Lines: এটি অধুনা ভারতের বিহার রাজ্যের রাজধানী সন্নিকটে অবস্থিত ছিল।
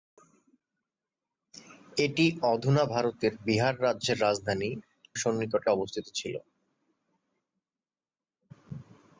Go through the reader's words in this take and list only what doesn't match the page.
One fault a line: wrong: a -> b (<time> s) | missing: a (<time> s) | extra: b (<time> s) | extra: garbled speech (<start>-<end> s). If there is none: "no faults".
no faults